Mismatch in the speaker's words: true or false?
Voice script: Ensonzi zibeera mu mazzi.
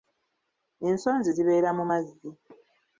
false